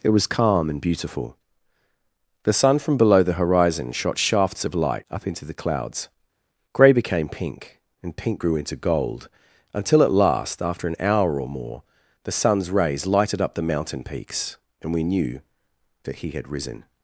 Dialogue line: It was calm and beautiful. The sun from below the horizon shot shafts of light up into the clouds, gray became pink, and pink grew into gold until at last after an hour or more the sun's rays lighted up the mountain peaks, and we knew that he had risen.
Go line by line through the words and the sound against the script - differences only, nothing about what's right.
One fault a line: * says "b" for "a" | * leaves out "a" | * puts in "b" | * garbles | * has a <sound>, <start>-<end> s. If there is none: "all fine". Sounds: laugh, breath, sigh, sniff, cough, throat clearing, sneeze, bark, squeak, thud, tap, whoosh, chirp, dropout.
all fine